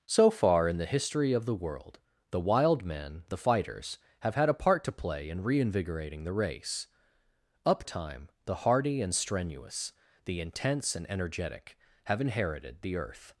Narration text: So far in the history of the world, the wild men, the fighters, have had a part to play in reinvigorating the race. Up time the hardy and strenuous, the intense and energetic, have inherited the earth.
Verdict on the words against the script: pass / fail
pass